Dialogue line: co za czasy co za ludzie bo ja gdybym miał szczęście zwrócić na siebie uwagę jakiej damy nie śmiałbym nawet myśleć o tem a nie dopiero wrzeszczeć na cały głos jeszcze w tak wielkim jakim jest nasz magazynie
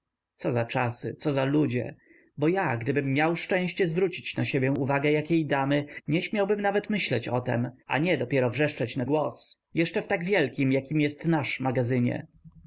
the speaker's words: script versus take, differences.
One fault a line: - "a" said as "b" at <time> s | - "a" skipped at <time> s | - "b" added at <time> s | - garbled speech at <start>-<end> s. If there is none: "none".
- "cały" skipped at 9.0 s